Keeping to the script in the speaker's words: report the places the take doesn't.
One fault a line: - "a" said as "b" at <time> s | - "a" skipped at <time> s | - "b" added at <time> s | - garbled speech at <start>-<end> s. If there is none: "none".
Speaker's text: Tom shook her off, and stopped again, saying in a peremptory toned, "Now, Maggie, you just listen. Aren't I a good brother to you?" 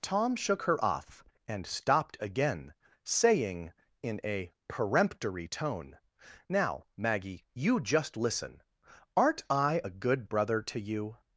- "toned" said as "tone" at 5.5 s